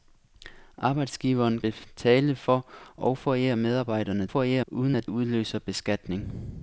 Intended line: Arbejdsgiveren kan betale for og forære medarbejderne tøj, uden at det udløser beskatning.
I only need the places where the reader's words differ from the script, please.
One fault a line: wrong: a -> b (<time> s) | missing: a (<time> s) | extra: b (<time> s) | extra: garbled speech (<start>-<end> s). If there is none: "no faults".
missing: kan (1.6 s)
wrong: tøj -> forære (4.3 s)
missing: det (5.1 s)